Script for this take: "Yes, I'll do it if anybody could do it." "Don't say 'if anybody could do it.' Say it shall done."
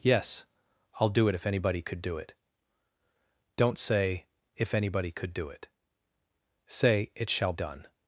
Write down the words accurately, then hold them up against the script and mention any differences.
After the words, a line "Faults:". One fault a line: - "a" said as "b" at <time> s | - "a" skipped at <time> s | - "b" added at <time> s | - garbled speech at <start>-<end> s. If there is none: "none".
"Yes, I'll do it if anybody could do it." "Don't say 'if anybody could do it.' Say it shall done."
Faults:
none